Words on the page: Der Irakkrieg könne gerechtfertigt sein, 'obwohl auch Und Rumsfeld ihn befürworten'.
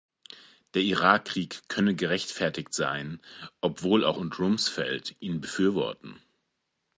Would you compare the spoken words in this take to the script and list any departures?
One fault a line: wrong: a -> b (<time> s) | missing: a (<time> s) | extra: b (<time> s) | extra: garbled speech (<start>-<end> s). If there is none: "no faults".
no faults